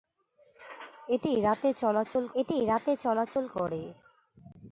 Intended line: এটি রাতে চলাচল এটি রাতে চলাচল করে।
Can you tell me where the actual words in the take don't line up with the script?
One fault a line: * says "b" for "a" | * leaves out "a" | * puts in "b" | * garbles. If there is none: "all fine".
all fine